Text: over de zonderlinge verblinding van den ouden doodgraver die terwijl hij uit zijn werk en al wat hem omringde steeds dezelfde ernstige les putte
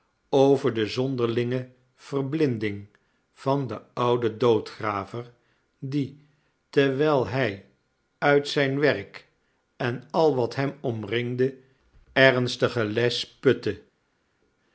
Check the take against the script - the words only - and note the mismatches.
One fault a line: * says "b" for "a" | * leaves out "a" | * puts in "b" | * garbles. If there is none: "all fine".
* leaves out "steeds dezelfde"